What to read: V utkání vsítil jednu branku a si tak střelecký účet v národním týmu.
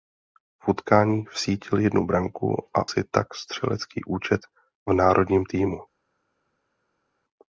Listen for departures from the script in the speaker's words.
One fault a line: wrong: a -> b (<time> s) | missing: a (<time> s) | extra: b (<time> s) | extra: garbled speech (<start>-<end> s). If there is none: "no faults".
no faults